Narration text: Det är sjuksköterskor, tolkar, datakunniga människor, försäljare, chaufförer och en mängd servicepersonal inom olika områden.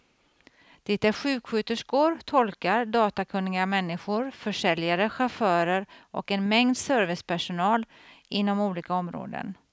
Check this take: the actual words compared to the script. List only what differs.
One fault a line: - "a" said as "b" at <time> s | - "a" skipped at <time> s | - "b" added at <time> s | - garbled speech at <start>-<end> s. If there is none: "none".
none